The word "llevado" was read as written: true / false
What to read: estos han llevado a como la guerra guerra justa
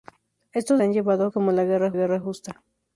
true